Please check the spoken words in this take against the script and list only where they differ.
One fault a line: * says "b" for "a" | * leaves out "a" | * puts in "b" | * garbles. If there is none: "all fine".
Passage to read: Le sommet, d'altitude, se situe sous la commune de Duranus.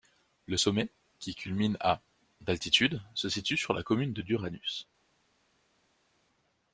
* puts in "qui culmine à"
* says "sur" for "sous"